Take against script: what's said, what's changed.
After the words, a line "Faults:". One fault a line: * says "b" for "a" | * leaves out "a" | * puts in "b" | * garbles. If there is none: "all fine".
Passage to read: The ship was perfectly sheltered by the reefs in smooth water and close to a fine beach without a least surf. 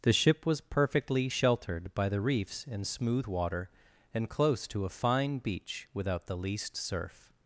The ship was perfectly sheltered by the reefs in smooth water and close to a fine beach without the least surf.
Faults:
* says "the" for "a"